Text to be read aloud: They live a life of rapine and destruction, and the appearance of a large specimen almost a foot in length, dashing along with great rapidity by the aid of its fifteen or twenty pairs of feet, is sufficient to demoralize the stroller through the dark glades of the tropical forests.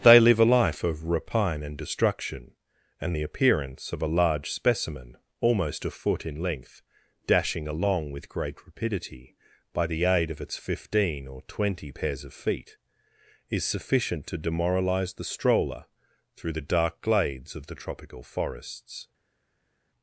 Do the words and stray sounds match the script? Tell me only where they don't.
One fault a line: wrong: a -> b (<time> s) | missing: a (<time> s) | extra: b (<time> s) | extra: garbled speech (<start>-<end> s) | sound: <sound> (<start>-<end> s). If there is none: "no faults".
no faults